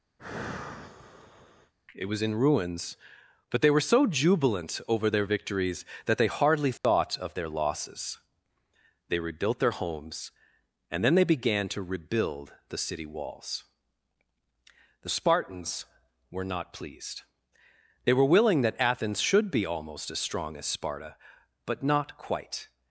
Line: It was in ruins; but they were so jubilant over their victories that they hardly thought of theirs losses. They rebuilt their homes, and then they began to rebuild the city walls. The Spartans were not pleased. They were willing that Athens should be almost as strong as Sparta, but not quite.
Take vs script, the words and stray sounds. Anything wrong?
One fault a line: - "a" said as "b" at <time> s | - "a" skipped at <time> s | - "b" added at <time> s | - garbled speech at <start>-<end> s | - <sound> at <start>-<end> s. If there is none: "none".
- sigh at 0.2-1.7 s
- dropout at 6.8-6.8 s
- "theirs" said as "their" at 7.3 s